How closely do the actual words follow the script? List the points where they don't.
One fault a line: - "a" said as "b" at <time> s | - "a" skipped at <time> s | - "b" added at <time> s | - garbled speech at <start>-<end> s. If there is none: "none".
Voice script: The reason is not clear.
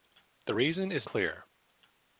- "not" skipped at 1.1 s